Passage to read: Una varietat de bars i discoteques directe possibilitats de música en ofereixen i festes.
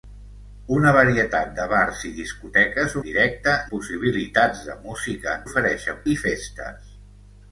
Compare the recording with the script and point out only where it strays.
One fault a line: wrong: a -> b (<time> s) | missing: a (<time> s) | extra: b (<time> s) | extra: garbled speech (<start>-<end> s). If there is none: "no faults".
no faults